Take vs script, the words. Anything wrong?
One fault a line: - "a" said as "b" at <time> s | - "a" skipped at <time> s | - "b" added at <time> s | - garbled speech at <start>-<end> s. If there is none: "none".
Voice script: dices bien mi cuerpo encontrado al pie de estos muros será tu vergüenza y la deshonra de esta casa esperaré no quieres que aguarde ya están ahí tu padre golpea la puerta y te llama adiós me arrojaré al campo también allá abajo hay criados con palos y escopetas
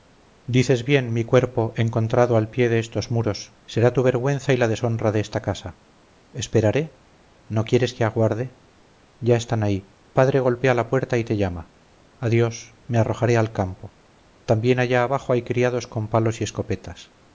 - "tu" skipped at 9.9 s